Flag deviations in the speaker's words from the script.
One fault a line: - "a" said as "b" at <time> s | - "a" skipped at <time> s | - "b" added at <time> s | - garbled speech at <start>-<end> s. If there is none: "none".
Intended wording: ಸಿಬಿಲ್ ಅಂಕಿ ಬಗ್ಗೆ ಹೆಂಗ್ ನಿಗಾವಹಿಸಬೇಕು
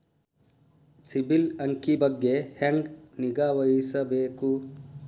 none